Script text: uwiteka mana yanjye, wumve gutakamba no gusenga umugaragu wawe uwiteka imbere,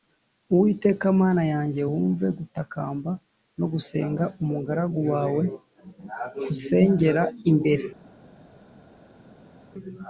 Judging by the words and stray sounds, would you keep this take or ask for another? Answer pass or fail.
fail